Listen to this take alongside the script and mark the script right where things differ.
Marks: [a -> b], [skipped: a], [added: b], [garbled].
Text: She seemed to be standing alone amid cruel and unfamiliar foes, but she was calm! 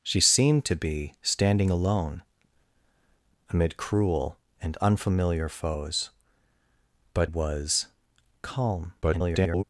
She seemed to be standing alone amid cruel and unfamiliar foes, but [skipped: she] was calm! [garbled]